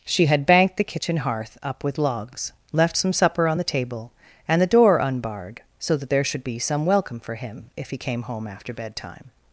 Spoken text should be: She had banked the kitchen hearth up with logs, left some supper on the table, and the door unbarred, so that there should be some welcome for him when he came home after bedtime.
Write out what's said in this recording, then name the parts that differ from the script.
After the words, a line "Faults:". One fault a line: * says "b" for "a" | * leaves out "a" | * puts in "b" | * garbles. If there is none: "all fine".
She had banked the kitchen hearth up with logs, left some supper on the table, and the door unbarred, so that there should be some welcome for him if he came home after bedtime.
Faults:
* says "if" for "when"